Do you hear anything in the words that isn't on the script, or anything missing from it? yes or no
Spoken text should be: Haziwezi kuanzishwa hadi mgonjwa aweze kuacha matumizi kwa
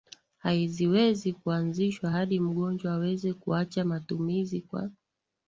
no